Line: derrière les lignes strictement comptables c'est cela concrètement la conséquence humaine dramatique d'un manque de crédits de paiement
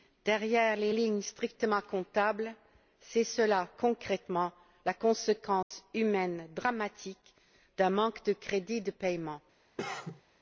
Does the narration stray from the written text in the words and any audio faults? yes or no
yes